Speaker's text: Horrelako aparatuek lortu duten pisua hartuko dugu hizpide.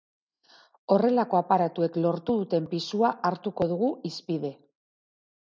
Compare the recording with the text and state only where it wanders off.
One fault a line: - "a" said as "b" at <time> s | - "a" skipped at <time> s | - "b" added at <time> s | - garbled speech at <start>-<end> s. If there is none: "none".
none